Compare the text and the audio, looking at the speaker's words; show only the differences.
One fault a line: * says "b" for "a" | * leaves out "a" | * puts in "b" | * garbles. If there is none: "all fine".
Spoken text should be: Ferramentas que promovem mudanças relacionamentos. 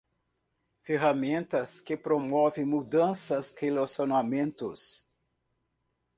all fine